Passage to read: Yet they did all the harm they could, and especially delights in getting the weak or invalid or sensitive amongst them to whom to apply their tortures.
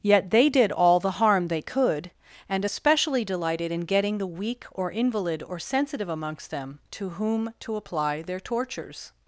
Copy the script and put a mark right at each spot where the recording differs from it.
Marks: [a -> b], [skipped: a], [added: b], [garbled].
Yet they did all the harm they could, and especially [delights -> delighted] in getting the weak or invalid or sensitive amongst them to whom to apply their tortures.